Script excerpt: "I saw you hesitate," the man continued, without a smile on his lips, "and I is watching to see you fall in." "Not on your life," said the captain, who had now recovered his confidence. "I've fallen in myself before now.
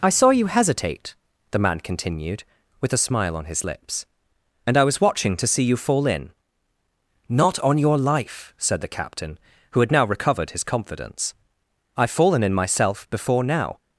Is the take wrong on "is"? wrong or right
wrong